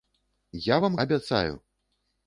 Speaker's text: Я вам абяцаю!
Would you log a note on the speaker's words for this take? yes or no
no